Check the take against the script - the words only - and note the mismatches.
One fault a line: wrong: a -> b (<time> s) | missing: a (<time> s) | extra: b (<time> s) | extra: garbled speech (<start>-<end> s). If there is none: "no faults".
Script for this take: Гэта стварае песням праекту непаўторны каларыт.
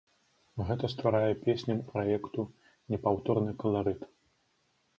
no faults